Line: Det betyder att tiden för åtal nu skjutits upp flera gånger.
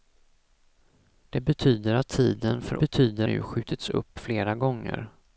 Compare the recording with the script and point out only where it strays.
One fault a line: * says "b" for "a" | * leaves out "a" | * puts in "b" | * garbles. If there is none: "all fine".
* says "betyder" for "åtal"